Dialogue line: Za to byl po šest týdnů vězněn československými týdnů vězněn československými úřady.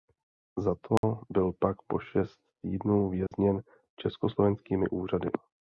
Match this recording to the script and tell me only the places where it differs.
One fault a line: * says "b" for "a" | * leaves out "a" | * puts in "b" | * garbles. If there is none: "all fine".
* puts in "pak"
* leaves out "týdnů vězněn československými"